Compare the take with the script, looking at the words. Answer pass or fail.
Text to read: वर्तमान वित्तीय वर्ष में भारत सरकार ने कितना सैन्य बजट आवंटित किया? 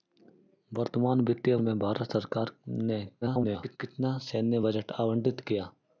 fail